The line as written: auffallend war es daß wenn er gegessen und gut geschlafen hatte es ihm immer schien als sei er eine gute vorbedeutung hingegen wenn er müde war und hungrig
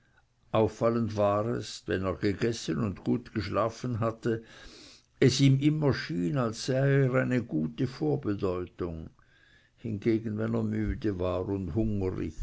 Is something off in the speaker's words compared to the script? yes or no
yes